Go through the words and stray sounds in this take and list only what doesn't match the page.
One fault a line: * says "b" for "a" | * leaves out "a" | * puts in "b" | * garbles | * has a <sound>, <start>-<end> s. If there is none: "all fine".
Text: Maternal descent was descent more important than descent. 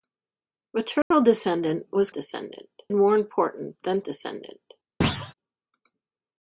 * has a dropout, 1.0-1.1 s
* has a thud, 5.0-5.3 s